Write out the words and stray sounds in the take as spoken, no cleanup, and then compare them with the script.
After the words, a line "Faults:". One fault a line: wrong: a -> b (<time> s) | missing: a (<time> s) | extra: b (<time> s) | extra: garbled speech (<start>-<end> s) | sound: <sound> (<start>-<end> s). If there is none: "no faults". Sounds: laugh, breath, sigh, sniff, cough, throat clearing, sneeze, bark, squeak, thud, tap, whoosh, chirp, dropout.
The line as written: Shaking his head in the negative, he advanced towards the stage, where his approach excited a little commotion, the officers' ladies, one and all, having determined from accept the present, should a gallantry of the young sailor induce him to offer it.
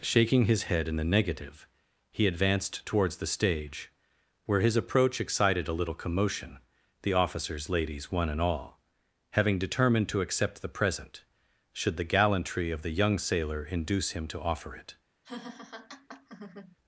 Shaking his head in the negative, he advanced towards the stage, where his approach excited a little commotion, the officers' ladies, one and all, having determined to accept the present, should the gallantry of the young sailor induce him to offer it.
Faults:
wrong: from -> to (10.1 s)
wrong: a -> the (12.0 s)
sound: laugh (15.2-16.8 s)